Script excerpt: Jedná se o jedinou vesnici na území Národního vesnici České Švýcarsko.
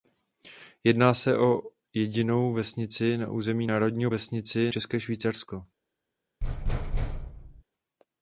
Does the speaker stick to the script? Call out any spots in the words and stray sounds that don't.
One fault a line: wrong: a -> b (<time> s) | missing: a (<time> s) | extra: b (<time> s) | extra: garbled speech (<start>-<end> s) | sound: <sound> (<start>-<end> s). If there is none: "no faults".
sound: thud (6.4-7.6 s)